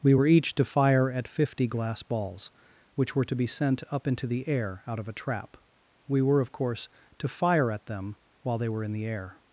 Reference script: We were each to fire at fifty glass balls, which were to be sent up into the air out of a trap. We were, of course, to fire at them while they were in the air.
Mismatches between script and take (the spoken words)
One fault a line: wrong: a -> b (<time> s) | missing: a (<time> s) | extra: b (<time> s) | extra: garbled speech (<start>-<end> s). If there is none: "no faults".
no faults